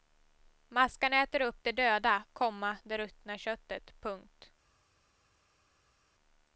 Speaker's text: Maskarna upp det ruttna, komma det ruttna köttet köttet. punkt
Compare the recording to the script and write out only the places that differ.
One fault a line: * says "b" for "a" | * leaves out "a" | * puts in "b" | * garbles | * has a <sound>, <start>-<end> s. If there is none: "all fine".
* puts in "äter"
* says "döda" for "ruttna"
* leaves out "köttet"